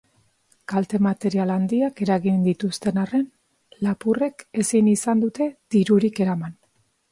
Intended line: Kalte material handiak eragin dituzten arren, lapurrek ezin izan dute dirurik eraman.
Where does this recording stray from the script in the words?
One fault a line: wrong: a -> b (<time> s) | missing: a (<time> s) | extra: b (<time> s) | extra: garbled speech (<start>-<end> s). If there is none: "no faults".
no faults